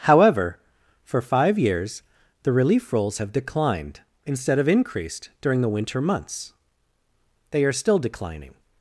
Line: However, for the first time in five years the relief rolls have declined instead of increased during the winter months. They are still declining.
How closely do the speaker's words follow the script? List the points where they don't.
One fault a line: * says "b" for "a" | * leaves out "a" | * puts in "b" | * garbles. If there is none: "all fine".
* leaves out "the first time in"